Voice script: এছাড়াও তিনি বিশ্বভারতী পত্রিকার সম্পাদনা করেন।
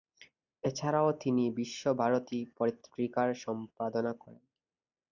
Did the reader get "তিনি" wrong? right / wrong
right